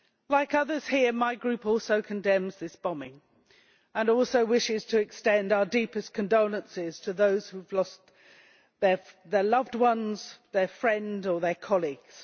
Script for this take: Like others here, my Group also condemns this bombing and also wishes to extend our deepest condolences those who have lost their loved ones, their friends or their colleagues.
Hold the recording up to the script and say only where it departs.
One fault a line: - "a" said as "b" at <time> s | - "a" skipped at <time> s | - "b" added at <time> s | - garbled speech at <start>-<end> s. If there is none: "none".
- "to" added at 7.0 s